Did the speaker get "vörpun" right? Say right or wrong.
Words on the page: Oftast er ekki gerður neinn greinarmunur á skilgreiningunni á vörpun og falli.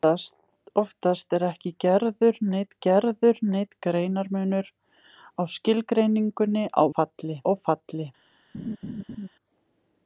wrong